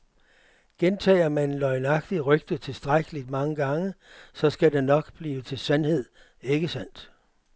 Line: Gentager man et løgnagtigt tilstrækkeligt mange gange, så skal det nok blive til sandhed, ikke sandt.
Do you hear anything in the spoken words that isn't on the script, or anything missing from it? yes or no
yes